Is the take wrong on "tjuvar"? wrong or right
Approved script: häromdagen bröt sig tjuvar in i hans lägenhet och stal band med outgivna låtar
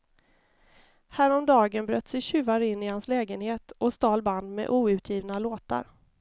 right